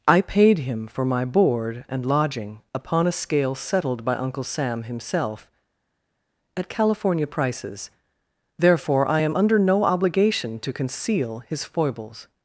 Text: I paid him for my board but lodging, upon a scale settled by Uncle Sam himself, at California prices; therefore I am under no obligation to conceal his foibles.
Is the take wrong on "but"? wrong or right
wrong